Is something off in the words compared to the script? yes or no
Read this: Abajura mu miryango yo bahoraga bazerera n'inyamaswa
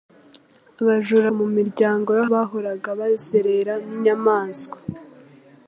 no